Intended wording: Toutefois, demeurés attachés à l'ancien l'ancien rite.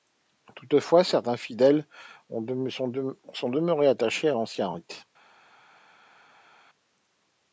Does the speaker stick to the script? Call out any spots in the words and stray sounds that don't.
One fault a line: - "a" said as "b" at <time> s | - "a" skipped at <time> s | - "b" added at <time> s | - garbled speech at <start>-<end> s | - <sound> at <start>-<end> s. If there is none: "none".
- "certains fidèles sont" added at 1.0 s
- "l'ancien" skipped at 4.7 s